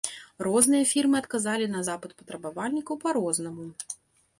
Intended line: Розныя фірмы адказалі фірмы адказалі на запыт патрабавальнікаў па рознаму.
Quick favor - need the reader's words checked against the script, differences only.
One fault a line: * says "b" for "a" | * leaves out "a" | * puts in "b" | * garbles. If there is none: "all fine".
* leaves out "фірмы адказалі"